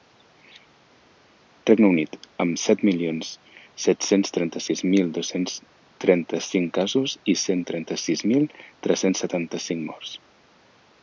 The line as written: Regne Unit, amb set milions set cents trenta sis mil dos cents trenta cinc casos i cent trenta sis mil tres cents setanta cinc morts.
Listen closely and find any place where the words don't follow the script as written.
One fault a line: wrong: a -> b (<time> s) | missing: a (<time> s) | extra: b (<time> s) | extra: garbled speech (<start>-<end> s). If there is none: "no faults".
no faults